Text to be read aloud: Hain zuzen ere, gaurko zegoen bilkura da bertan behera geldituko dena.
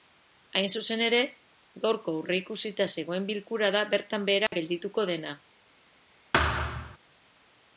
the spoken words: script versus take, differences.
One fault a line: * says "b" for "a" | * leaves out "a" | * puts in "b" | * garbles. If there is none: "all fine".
* puts in "aurreikusita"